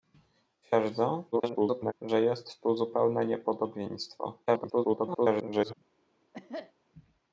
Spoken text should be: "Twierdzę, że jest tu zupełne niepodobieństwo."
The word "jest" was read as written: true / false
true